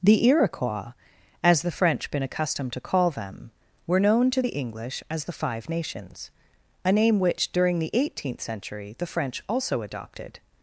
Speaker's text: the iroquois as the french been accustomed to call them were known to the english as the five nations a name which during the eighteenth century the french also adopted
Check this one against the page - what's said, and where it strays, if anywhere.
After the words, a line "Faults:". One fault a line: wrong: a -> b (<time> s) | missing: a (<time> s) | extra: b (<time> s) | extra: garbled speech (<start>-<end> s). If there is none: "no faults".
the iroquois as the french been accustomed to call them were known to the english as the five nations a name which during the eighteenth century the french also adopted
Faults:
no faults